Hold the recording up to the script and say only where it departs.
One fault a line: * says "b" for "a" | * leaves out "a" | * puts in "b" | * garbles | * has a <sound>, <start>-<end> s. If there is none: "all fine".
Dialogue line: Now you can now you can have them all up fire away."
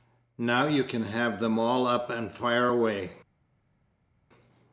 * leaves out "now you can"
* puts in "and"